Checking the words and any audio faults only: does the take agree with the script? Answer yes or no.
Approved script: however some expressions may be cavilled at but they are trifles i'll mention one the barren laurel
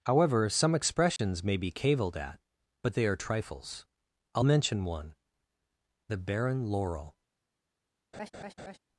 no